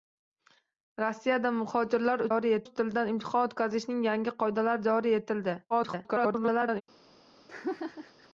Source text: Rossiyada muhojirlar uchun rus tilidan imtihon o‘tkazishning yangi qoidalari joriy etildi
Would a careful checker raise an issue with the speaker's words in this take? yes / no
yes